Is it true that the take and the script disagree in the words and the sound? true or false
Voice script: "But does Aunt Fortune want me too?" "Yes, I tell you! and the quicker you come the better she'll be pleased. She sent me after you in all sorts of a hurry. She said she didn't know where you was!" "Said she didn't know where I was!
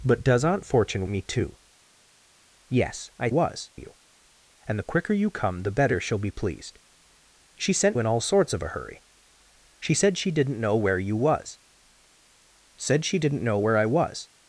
true